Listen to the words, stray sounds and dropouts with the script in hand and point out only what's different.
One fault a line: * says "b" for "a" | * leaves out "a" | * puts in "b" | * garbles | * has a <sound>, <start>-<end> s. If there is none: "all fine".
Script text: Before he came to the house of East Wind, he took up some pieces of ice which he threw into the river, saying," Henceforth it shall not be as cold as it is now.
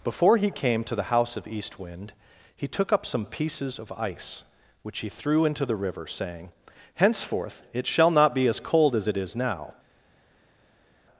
all fine